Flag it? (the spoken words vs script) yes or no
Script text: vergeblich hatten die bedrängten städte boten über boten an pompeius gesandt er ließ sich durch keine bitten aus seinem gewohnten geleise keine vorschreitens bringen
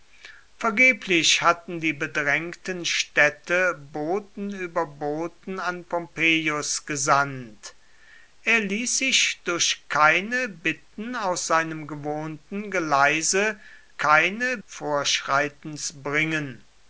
no